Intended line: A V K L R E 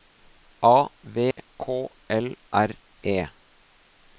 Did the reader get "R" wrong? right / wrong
right